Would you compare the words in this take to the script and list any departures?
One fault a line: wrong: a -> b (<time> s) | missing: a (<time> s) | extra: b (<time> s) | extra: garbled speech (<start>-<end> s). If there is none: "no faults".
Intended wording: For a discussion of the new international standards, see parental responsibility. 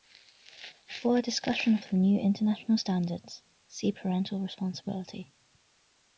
no faults